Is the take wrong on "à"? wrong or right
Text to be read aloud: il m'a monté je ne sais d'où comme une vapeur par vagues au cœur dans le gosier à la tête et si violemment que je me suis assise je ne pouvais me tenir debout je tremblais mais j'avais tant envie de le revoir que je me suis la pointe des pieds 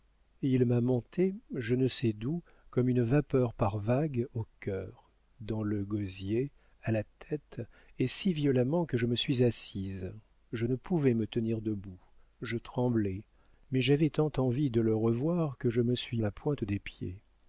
right